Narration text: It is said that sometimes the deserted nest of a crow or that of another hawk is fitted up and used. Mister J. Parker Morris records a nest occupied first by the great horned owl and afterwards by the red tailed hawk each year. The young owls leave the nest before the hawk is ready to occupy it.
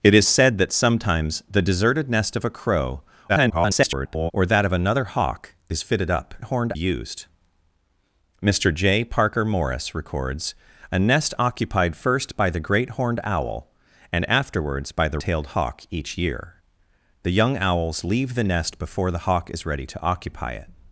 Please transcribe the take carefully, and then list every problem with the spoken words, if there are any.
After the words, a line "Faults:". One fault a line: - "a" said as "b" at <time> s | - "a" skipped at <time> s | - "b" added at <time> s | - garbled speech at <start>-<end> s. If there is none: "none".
It is said that sometimes the deserted nest of a crow [garbled] or that of another hawk is fitted up horned used. Mister J. Parker Morris records a nest occupied first by the great horned owl and afterwards by the tailed hawk each year. The young owls leave the nest before the hawk is ready to occupy it.
Faults:
- garbled speech at 3.3-4.3 s
- "and" said as "horned" at 6.4 s
- "red" skipped at 15.2 s